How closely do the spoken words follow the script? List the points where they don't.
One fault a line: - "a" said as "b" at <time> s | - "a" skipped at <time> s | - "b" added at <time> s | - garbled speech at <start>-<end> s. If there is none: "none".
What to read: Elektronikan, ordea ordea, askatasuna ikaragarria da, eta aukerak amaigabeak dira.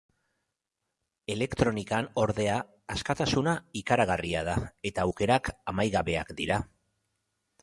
- "ordea" skipped at 2.5 s